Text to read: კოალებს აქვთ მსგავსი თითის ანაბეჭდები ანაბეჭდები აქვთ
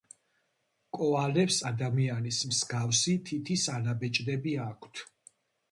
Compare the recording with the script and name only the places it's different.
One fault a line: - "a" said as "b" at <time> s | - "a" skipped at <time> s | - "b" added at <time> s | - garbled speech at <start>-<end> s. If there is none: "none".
- "აქვთ" said as "ადამიანის" at 1.7 s
- "ანაბეჭდები" skipped at 4.6 s